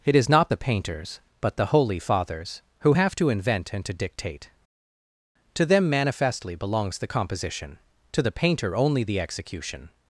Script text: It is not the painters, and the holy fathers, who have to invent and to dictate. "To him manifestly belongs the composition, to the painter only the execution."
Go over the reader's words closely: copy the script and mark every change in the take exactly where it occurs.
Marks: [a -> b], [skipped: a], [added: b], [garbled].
It is not the painters, [and -> but] the holy fathers, who have to invent and to dictate. "To [him -> them] manifestly belongs the composition, to the painter only the execution."